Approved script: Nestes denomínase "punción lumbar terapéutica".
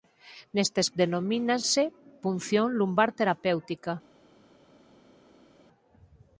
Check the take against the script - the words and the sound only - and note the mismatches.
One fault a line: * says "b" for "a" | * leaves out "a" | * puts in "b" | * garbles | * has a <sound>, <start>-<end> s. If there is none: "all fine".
all fine